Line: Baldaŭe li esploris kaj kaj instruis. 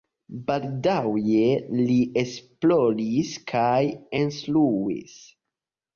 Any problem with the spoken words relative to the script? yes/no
yes